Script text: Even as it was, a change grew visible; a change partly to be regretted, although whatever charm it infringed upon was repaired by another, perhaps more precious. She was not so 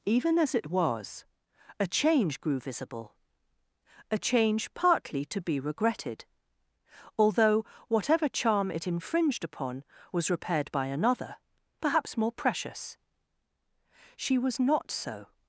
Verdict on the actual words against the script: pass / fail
pass